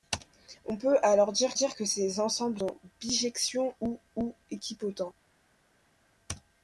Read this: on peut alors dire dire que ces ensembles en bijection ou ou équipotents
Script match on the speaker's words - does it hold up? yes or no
yes